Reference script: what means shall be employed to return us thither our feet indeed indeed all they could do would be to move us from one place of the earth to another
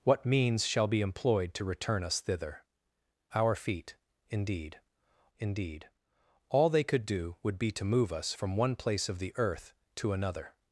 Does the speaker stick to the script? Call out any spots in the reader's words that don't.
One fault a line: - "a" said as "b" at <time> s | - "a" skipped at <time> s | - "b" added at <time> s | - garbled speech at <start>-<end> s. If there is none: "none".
none